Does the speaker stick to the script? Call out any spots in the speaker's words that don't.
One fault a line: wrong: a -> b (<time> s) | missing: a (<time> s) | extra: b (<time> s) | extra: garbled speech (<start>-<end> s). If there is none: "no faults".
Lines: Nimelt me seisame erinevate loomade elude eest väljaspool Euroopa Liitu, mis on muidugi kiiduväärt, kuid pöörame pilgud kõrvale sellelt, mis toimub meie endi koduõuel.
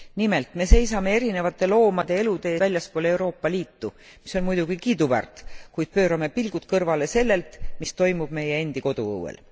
missing: eest (2.5 s)